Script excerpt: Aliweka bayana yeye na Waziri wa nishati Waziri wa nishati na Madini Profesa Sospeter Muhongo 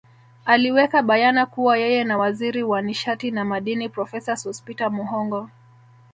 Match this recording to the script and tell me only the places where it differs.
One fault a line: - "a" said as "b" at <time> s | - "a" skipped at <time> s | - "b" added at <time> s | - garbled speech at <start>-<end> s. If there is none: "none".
- "kuwa" added at 1.4 s
- "Waziri wa nishati" skipped at 3.3 s